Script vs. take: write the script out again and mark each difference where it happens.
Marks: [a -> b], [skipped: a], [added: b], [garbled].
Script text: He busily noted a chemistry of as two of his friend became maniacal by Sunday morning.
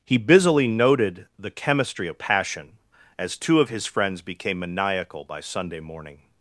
He busily noted [a -> the] chemistry of [added: passion] as two of his [friend -> friends] became maniacal by Sunday morning.